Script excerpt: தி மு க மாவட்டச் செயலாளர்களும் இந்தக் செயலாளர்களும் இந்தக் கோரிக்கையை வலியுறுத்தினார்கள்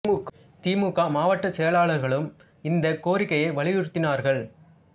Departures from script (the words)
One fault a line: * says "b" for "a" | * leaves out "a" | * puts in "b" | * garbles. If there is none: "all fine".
* leaves out "செயலாளர்களும் இந்தக்"